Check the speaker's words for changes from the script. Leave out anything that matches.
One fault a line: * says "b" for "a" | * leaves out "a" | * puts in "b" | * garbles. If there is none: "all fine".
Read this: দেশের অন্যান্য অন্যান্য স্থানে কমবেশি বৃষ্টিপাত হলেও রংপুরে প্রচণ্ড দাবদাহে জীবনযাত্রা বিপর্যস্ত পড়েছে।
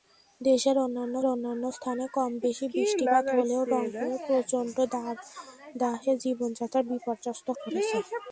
all fine